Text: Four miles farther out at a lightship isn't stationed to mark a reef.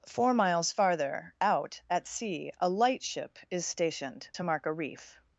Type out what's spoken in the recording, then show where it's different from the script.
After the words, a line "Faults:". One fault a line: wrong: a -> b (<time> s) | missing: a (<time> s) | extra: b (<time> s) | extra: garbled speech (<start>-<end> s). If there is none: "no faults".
Four miles farther out at sea a lightship is stationed to mark a reef.
Faults:
extra: sea (2.1 s)
wrong: isn't -> is (3.5 s)